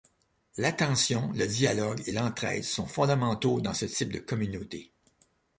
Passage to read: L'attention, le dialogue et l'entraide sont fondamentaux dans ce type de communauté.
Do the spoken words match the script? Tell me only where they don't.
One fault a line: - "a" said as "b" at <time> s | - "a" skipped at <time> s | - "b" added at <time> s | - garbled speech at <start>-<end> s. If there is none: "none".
none